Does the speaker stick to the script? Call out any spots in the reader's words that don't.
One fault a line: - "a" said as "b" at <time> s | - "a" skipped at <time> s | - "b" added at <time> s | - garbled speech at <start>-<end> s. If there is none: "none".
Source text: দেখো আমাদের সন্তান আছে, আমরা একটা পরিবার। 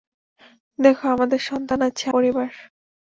- "আমরা একটা" skipped at 2.0 s